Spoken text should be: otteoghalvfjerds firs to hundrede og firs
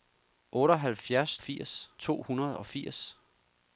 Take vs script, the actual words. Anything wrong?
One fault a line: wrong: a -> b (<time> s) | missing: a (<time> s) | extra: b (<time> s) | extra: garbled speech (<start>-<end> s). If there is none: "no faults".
no faults